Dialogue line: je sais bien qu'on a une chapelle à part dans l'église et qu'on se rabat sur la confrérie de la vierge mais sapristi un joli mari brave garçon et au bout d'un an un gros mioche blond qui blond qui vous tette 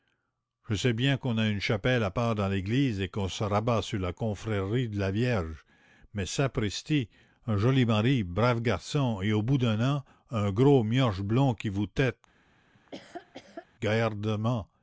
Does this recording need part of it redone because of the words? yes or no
yes